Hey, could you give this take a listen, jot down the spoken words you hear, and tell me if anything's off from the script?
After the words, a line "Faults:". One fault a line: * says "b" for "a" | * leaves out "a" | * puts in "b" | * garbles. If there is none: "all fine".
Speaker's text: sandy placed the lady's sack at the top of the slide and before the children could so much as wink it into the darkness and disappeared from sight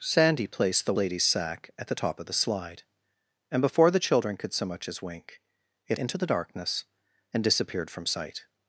sandy placed the lady's sack at the top of the slide and before the children could so much as wink it into the darkness and disappeared from sight
Faults:
all fine